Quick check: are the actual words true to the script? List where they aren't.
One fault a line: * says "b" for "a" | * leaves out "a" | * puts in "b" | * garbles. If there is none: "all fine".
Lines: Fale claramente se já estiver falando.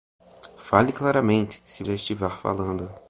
all fine